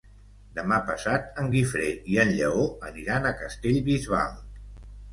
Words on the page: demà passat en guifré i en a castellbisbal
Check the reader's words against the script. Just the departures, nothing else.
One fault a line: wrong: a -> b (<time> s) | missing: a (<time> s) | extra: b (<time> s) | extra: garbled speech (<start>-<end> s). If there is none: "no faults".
extra: lleó aniran (2.4 s)